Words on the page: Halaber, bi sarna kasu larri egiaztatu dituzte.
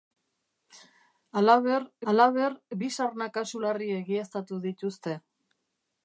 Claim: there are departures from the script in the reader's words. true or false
true